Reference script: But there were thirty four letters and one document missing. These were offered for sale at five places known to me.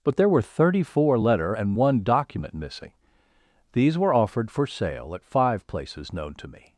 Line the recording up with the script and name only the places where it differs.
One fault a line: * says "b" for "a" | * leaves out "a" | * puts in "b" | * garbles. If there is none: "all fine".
* says "letter" for "letters"